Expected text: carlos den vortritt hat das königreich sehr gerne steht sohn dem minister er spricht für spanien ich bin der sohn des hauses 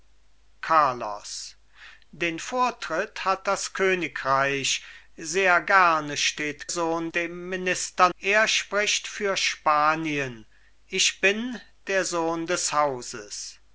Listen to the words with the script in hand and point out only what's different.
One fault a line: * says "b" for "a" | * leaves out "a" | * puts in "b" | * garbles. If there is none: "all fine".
all fine